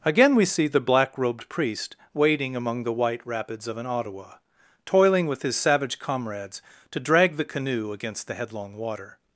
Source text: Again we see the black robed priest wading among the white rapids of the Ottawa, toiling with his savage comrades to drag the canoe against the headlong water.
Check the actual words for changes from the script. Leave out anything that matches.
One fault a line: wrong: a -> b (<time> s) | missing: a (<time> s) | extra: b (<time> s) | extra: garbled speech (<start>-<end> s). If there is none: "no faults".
wrong: the -> an (3.8 s)